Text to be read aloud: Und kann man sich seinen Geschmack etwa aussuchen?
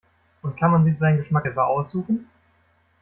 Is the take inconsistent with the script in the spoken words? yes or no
no